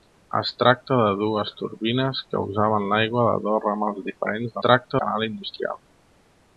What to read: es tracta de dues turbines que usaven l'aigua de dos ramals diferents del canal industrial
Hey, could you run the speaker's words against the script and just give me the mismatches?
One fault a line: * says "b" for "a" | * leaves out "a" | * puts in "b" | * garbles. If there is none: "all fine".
* says "tracta" for "del"